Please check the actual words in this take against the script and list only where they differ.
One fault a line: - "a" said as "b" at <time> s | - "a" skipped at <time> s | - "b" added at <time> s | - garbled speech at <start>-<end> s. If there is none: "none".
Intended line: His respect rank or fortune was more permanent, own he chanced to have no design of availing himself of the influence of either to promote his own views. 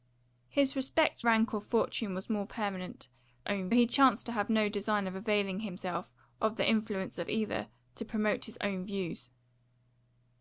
none